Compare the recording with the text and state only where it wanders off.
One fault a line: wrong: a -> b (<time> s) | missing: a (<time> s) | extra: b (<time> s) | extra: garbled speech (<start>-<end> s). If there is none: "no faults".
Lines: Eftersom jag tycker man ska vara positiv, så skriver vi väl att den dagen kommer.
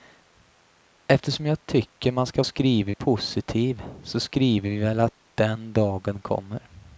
wrong: vara -> skriver (2.4 s)